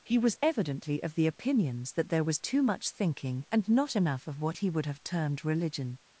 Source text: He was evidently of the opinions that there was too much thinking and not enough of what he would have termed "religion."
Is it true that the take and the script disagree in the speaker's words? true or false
false